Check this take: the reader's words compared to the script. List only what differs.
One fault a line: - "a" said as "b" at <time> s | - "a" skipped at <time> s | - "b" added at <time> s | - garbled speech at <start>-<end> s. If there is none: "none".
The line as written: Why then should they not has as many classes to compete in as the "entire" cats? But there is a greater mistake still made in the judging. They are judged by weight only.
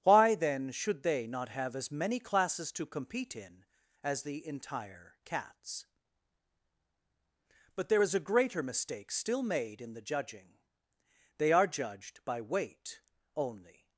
- "has" said as "have" at 1.5 s